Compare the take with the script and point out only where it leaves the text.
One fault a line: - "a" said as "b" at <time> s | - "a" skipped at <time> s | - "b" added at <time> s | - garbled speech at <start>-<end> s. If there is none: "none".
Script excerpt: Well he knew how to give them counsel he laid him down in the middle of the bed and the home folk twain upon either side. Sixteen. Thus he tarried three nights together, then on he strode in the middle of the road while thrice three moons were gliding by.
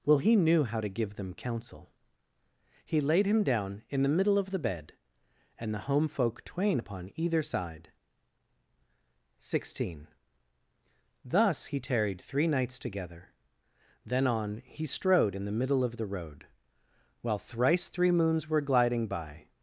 none